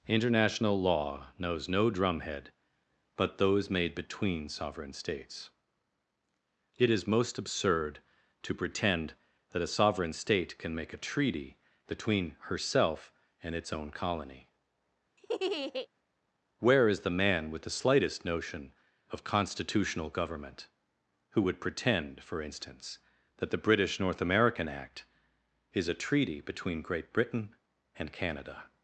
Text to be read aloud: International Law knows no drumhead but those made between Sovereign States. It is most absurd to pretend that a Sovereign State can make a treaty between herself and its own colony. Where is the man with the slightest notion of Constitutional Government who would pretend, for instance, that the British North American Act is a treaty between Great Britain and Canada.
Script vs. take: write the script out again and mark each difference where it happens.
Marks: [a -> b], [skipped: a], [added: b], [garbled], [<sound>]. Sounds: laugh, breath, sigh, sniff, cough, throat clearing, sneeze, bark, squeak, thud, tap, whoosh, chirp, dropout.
International Law knows no drumhead but those made between Sovereign States. It is most absurd to pretend that a Sovereign State can make a treaty between herself and its own colony. [laugh] Where is the man with the slightest notion of Constitutional Government who would pretend, for instance, that the British North American Act is a treaty between Great Britain and Canada.